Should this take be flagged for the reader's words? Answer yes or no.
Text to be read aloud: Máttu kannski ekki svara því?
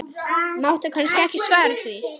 no